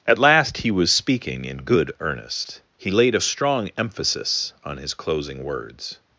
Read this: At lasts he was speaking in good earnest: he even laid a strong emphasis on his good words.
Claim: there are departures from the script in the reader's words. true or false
true